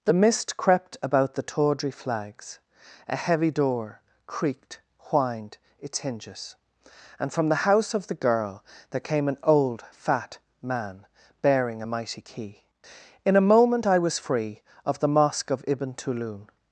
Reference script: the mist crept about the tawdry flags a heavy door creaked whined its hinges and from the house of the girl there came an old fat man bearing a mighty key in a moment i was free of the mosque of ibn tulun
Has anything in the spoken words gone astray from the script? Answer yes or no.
no